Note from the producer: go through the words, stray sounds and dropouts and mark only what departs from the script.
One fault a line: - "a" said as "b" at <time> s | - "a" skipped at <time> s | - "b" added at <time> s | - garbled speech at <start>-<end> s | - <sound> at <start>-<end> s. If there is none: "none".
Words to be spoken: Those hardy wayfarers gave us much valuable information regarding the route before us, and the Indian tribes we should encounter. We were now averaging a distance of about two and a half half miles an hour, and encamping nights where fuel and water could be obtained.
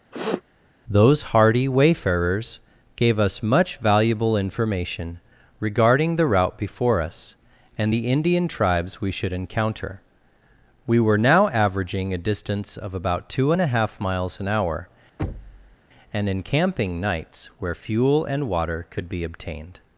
- sniff at 0.1-0.4 s
- "half" skipped at 14.0 s
- thud at 15.2-15.8 s